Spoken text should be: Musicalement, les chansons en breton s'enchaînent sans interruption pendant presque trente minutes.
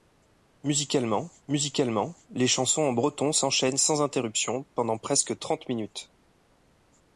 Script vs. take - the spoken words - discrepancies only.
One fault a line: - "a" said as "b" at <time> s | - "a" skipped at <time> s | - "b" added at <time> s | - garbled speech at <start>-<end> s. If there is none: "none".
- "musicalement" added at 1.5 s